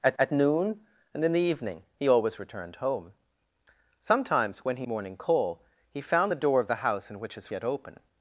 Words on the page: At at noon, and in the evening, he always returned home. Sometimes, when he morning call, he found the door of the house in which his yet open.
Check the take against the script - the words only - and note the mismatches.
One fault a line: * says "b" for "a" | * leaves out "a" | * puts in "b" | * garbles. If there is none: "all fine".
all fine